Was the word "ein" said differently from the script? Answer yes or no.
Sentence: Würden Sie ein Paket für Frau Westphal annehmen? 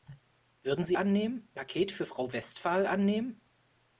yes